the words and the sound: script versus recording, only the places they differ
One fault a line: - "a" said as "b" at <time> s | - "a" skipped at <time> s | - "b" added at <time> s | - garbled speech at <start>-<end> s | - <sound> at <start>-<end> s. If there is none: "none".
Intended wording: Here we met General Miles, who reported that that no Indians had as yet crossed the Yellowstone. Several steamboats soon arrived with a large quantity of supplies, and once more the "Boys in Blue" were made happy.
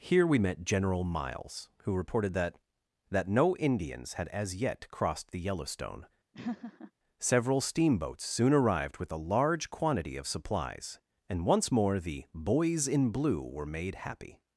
- laugh at 6.3-6.9 s